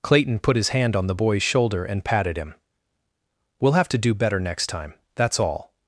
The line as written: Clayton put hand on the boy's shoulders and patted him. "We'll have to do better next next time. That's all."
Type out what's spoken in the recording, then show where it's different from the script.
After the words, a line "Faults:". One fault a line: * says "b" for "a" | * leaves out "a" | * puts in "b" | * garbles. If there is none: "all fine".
Clayton put his hand on the boy's shoulder and patted him. "We'll have to do better next time. That's all."
Faults:
* puts in "his"
* says "shoulder" for "shoulders"
* leaves out "next"